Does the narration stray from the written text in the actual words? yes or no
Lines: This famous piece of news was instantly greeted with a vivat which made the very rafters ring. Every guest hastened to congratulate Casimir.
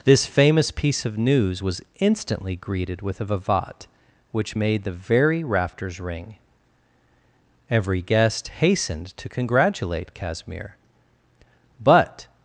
yes